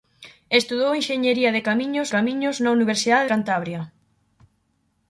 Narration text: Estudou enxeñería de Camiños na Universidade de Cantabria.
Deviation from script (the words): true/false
true